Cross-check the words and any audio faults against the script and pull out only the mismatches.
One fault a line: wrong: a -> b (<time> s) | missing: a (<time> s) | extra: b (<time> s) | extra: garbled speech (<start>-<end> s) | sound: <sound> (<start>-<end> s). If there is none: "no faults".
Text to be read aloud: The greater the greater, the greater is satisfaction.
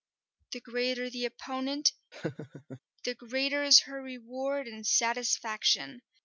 wrong: greater -> opponent (1.2 s)
sound: laugh (2.1-2.8 s)
extra: her reward and (3.8 s)